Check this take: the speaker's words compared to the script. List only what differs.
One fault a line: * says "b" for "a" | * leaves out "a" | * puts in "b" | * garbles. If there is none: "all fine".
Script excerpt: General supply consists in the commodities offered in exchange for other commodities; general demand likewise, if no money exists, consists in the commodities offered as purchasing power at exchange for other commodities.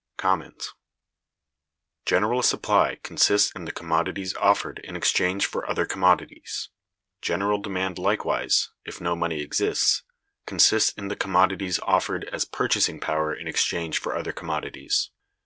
* says "in" for "at"